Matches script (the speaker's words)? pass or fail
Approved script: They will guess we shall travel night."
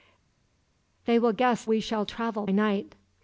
pass